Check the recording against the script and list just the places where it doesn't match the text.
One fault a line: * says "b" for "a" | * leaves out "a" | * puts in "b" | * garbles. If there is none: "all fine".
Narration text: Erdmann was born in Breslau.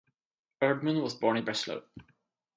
all fine